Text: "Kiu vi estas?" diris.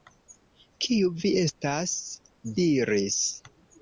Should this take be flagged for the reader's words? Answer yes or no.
no